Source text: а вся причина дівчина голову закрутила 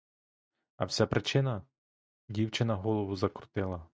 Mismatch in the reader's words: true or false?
false